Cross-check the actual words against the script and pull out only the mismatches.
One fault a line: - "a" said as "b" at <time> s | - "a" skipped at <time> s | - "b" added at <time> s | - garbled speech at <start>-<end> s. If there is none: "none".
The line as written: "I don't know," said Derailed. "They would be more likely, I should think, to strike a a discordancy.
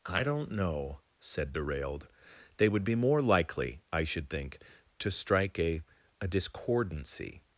none